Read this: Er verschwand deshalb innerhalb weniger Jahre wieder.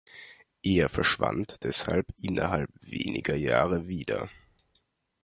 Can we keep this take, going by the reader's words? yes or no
yes